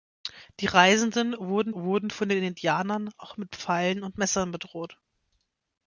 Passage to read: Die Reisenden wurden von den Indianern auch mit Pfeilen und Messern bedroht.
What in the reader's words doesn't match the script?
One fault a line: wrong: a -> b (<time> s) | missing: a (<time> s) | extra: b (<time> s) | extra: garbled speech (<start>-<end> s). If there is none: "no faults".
extra: wurden (1.7 s)